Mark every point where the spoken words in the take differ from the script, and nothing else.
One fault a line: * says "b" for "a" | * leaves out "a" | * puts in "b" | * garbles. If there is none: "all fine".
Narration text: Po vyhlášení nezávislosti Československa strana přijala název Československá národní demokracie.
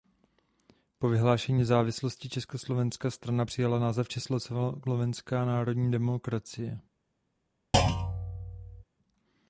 all fine